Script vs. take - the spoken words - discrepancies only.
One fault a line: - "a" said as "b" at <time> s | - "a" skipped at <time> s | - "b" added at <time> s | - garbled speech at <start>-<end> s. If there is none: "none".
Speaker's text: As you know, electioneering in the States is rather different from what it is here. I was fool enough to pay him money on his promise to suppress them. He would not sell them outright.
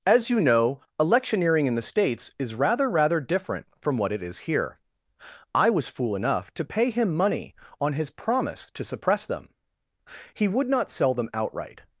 - "rather" added at 2.9 s